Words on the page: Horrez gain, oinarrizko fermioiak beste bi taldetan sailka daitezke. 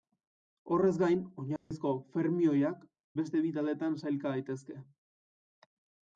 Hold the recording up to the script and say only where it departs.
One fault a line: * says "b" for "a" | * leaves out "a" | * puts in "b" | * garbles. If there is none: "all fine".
all fine